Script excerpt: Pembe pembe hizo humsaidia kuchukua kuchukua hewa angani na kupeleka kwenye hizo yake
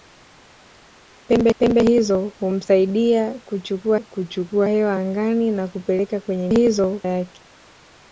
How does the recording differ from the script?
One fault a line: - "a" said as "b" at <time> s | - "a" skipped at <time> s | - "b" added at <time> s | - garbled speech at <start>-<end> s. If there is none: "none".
none